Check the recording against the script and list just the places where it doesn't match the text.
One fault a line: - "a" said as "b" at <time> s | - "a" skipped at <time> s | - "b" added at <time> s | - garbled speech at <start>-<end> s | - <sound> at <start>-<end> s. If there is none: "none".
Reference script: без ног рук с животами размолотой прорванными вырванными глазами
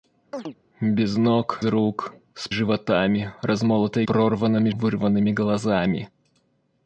- chirp at 0.3-0.6 s